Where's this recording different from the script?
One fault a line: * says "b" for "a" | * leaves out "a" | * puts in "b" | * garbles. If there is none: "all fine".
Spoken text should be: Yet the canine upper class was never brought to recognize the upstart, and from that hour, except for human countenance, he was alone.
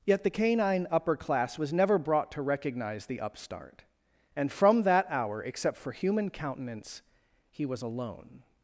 all fine